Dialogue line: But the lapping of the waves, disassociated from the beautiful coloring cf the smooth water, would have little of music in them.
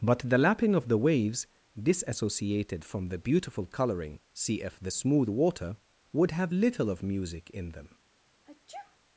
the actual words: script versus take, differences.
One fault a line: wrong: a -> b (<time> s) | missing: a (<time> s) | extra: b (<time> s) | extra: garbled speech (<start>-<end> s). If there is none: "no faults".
no faults